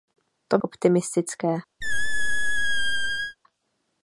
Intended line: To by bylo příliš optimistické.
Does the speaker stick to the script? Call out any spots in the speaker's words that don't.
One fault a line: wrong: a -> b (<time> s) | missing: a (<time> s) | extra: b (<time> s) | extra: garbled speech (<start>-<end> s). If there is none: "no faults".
missing: by bylo příliš (0.6 s)